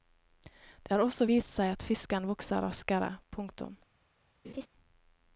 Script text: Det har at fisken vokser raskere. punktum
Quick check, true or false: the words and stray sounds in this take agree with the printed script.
false